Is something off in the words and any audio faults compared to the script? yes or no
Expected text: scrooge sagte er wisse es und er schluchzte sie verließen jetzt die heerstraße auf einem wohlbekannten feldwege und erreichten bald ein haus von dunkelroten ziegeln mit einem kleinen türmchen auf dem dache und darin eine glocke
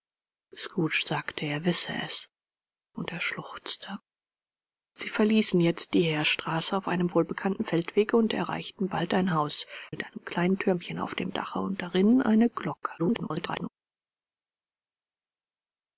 yes